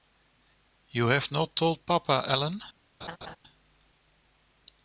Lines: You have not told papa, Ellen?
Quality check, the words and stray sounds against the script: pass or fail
fail